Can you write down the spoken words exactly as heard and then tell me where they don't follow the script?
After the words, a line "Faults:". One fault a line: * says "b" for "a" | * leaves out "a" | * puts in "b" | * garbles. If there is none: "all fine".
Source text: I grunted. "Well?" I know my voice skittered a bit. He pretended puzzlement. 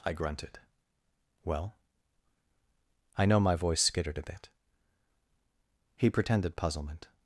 I grunted. "Well?" I know my voice skittered a bit. He pretended puzzlement.
Faults:
all fine